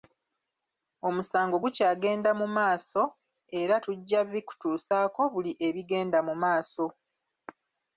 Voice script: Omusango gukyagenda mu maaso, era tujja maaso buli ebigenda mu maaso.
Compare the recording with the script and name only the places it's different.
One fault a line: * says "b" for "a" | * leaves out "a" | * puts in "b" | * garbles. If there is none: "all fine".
* says "bikutuusaako" for "maaso"